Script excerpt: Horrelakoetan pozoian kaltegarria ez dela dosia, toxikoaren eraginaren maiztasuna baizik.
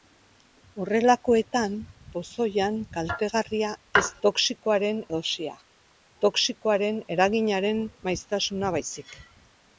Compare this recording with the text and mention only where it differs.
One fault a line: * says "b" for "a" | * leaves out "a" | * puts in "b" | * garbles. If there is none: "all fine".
* says "toxikoaren" for "dela"